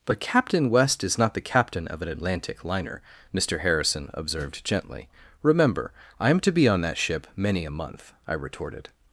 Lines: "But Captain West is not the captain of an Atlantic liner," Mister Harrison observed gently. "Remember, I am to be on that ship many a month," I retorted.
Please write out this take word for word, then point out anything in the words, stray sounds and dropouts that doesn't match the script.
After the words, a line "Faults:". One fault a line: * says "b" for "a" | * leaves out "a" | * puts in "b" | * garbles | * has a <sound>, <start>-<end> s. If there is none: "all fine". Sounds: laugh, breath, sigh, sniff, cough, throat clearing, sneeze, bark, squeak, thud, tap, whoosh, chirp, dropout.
"But Captain West is not the captain of an Atlantic liner," Mister Harrison observed gently. "Remember, I am to be on that ship many a month," I retorted.
Faults:
all fine